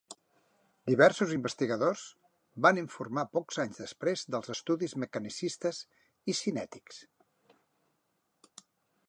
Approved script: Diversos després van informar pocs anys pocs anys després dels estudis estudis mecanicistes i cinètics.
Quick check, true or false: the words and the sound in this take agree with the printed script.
false